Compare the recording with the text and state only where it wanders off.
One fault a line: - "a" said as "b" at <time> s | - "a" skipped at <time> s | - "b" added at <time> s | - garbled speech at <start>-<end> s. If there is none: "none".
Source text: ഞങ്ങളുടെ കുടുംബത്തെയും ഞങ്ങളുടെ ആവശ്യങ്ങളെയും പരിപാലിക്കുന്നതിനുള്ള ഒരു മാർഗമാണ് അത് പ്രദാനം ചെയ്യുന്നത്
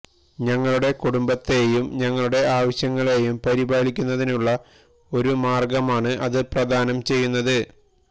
none